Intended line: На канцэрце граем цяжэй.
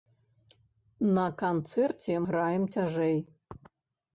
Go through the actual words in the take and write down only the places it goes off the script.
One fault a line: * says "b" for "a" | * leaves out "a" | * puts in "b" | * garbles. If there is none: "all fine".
all fine